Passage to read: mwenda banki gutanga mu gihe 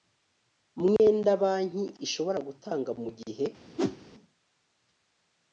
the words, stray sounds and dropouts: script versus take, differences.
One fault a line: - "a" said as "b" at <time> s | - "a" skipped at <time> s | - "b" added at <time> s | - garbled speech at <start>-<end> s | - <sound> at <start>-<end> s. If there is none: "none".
- dropout at 1.0-1.0 s
- "ishobora" added at 2.0 s
- whoosh at 3.8-4.0 s